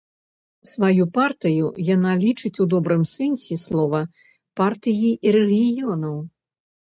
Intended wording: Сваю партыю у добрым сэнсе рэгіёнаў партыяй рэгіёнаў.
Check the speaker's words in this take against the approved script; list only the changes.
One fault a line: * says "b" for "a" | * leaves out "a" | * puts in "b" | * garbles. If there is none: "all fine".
* puts in "яна лічыць"
* says "слова" for "рэгіёнаў"